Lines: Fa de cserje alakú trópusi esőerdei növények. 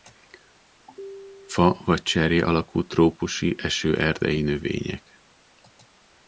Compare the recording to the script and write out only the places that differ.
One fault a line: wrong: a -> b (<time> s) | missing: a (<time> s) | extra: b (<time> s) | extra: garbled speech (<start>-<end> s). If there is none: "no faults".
wrong: de -> vagy (1.9 s)